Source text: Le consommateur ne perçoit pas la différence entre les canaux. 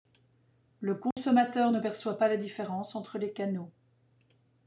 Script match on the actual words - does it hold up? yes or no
yes